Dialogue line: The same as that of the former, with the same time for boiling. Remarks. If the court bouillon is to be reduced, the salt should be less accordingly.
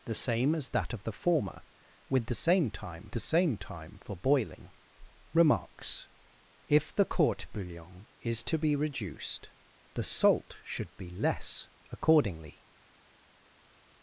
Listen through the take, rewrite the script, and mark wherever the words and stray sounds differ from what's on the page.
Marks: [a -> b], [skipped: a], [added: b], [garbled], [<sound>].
The same as that of the former, with the same time [added: the same time] for boiling. Remarks. If the court bouillon is to be reduced, the salt should be less accordingly.